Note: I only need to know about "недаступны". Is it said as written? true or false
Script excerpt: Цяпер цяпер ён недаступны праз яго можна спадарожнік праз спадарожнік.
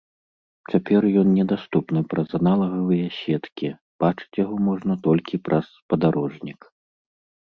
true